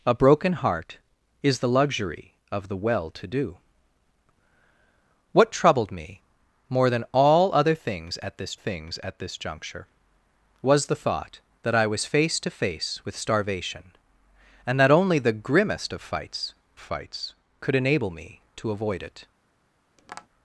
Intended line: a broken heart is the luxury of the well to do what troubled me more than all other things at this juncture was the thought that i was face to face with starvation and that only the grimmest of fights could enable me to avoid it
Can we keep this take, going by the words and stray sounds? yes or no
no